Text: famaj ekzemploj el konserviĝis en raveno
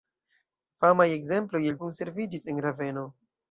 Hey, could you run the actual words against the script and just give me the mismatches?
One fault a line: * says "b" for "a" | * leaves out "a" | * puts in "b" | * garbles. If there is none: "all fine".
all fine